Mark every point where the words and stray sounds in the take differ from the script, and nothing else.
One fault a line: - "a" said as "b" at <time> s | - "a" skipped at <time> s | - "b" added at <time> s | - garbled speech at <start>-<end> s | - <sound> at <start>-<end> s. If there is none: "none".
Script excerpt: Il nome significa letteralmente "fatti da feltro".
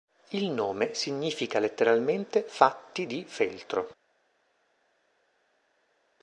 - "da" said as "di" at 3.0 s